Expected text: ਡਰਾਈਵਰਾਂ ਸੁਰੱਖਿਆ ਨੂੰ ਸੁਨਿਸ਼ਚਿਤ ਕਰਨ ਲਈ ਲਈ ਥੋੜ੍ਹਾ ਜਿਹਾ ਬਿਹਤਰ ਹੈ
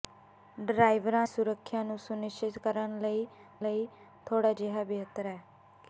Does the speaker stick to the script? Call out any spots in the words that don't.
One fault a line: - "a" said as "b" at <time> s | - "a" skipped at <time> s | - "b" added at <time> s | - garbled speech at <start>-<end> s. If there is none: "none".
none